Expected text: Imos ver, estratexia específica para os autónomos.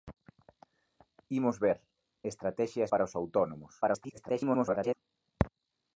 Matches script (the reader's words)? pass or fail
fail